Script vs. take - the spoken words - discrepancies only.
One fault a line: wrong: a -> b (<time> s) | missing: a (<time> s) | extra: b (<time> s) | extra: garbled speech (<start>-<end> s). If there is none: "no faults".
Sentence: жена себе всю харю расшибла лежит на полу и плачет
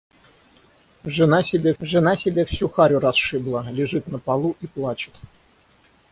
extra: жена себе (1.8 s)